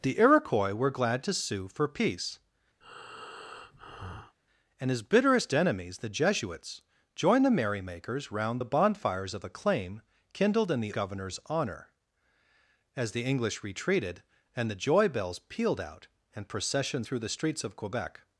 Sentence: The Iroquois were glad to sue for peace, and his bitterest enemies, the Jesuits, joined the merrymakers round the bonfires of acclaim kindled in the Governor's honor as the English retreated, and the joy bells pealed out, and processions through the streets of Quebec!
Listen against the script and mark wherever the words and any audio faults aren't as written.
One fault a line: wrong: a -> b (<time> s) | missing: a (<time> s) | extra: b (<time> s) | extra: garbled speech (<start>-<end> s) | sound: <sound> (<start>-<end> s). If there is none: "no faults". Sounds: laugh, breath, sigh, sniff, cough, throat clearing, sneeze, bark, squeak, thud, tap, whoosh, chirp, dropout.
sound: breath (2.8-4.4 s)